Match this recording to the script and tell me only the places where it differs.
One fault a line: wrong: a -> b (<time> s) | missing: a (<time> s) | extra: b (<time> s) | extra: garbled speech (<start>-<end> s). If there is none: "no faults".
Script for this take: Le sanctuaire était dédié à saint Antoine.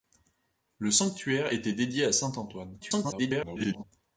extra: garbled speech (2.8-3.8 s)